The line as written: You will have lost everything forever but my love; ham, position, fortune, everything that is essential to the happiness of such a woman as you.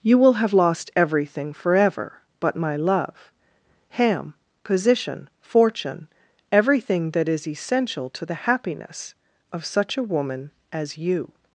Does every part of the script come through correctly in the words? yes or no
yes